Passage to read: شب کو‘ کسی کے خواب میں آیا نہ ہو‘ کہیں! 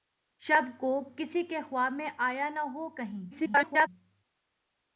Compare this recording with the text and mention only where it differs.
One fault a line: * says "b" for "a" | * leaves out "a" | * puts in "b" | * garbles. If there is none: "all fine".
* garbles